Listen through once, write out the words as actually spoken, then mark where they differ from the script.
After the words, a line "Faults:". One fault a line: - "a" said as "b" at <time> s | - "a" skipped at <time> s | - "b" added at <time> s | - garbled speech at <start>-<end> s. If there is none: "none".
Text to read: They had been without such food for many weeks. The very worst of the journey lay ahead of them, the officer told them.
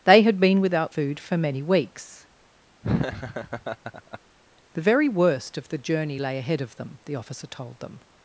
They had been without food for many weeks. The very worst of the journey lay ahead of them, the officer told them.
Faults:
- "such" skipped at 0.9 s